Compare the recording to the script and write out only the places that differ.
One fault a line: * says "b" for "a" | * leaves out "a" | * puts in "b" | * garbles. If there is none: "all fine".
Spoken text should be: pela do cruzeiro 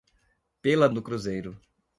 all fine